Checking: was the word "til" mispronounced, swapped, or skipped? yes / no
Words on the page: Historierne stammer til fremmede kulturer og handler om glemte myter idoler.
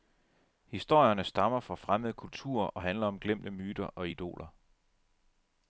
yes